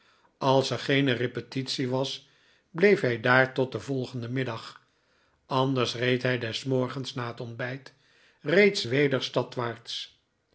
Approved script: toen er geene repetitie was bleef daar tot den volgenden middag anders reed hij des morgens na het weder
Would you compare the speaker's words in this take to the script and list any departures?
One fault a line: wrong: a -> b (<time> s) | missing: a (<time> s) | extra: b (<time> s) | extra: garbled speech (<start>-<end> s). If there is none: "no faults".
wrong: toen -> als (0.4 s)
extra: hij (3.0 s)
extra: ontbijt reeds (7.4 s)